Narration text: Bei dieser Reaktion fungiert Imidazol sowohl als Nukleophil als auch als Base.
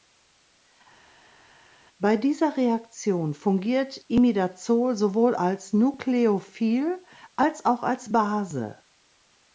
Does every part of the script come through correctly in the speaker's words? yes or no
yes